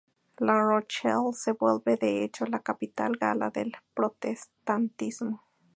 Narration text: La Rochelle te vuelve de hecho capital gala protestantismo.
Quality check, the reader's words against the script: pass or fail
fail